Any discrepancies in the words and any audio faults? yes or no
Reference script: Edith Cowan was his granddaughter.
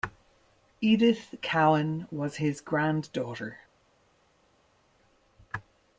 no